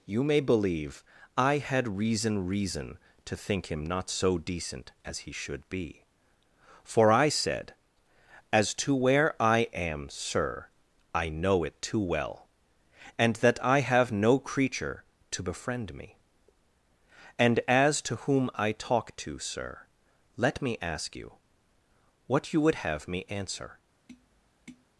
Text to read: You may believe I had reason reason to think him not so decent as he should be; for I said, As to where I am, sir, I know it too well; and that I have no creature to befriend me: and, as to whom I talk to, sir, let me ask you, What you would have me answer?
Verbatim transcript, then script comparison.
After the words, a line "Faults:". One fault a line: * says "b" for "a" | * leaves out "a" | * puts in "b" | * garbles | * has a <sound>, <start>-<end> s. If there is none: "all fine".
You may believe I had reason reason to think him not so decent as he should be; for I said, As to where I am, sir, I know it too well; and that I have no creature to befriend me: and, as to whom I talk to, sir, let me ask you, What you would have me answer?
Faults:
* has a tap, 24.1-24.9 s